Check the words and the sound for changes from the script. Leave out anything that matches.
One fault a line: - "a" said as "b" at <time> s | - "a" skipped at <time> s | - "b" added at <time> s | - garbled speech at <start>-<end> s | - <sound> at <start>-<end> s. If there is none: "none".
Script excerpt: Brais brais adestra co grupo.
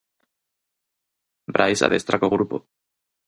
- "brais" skipped at 1.8 s